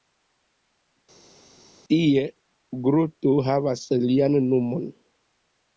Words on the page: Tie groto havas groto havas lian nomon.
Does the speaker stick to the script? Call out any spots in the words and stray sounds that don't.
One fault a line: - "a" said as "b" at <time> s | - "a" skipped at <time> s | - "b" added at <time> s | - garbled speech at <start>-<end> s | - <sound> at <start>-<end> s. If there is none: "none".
- "groto havas" skipped at 3.8 s